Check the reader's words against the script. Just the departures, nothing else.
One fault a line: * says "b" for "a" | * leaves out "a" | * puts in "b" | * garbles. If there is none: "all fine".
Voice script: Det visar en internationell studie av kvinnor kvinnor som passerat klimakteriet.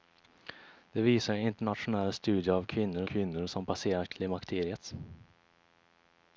all fine